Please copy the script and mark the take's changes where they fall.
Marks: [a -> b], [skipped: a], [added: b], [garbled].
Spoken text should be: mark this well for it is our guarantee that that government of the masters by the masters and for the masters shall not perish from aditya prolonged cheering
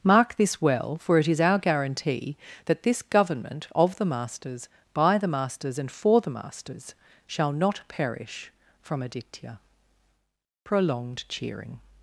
mark this well for it is our guarantee that [that -> this] government of the masters by the masters and for the masters shall not perish from aditya prolonged cheering